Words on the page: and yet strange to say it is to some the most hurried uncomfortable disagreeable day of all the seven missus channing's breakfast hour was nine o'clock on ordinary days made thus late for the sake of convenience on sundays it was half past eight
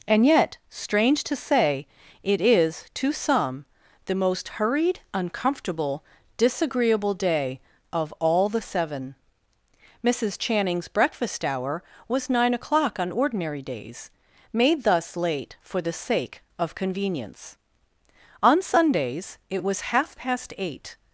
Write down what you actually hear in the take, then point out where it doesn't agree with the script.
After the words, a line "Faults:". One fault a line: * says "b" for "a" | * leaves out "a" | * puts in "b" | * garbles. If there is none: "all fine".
and yet strange to say it is to some the most hurried uncomfortable disagreeable day of all the seven missus channing's breakfast hour was nine o'clock on ordinary days made thus late for the sake of convenience on sundays it was half past eight
Faults:
all fine